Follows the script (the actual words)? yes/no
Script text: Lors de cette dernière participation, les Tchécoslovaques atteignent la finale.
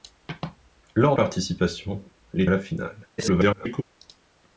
no